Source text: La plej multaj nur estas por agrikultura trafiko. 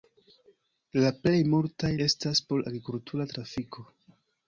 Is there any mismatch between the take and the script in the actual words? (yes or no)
yes